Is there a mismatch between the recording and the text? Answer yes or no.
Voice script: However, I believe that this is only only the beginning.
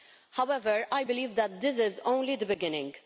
yes